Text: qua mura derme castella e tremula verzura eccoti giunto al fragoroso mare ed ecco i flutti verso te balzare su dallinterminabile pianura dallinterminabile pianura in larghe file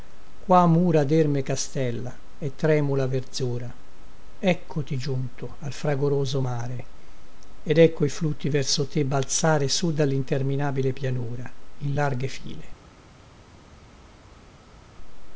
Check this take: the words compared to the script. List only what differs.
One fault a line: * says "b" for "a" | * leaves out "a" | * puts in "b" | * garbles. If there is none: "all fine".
* leaves out "dallinterminabile pianura"